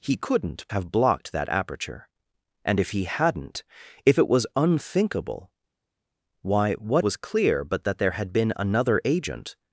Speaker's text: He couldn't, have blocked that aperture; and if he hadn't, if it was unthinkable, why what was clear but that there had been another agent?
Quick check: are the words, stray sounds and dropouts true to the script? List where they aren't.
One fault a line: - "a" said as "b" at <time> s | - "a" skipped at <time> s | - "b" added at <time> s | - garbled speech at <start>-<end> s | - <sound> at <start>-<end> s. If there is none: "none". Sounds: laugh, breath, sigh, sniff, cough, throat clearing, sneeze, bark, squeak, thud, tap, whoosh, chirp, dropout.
none